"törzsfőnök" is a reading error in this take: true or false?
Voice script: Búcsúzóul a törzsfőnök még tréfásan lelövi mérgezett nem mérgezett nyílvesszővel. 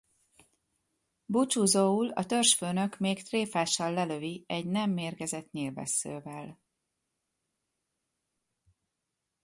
false